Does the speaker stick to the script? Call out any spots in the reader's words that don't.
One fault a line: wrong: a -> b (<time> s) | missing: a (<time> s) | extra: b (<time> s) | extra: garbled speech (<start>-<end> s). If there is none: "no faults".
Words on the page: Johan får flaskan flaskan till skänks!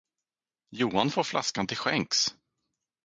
missing: flaskan (1.7 s)